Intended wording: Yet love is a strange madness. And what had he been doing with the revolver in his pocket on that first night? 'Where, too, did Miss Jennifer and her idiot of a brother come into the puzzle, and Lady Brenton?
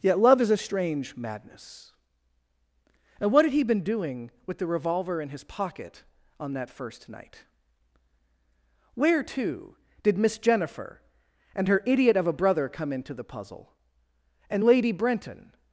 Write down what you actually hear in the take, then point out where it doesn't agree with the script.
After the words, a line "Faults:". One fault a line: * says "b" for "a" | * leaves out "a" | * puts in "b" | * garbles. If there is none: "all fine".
Yet love is a strange madness. And what had he been doing with the revolver in his pocket on that first night? 'Where, too, did Miss Jennifer and her idiot of a brother come into the puzzle, and Lady Brenton?
Faults:
all fine